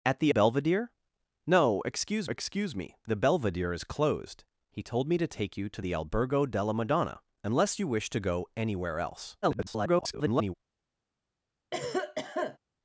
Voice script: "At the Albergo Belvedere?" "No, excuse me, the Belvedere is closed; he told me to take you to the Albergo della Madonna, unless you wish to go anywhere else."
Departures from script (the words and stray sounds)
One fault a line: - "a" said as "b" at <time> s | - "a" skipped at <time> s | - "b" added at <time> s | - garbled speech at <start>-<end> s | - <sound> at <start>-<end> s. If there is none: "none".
- "Albergo" skipped at 0.3 s
- "excuse" added at 2.3 s
- garbled speech at 9.4-10.5 s
- cough at 11.7-12.6 s